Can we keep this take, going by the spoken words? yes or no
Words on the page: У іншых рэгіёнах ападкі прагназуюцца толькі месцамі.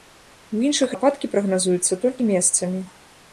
no